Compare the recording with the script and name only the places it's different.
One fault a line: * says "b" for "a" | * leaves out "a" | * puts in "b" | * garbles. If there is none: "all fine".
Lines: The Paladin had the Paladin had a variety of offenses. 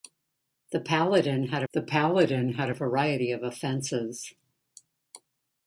all fine